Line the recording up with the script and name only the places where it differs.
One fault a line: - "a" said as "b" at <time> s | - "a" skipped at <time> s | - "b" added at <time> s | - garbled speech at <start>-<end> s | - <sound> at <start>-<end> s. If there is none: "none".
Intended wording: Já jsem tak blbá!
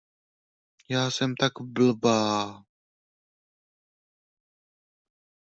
none